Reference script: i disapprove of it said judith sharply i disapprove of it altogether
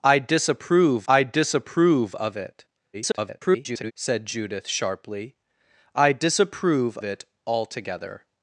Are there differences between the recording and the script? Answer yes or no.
yes